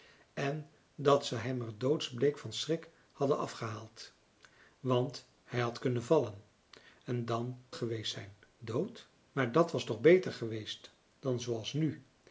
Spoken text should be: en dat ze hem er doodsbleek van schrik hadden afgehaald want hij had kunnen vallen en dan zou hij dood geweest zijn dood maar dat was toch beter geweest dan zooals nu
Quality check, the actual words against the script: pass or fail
fail